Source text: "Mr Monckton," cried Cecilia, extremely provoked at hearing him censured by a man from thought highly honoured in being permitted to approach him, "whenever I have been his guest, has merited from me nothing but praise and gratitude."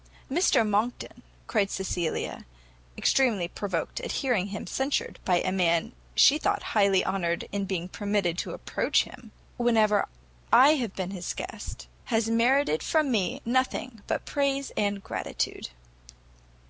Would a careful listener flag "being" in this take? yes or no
no